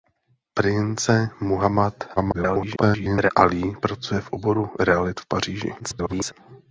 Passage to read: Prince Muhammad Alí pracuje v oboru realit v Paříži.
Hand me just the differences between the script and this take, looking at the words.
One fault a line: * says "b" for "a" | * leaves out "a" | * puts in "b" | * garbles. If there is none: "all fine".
* garbles
* garbles